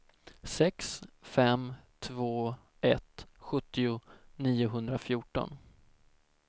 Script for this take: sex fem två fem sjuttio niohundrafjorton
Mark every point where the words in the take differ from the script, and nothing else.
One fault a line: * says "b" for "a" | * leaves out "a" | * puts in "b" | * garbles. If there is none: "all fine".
* says "ett" for "fem"